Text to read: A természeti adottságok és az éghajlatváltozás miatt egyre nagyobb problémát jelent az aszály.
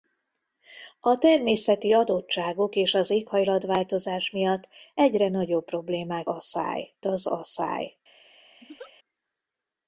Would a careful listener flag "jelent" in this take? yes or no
yes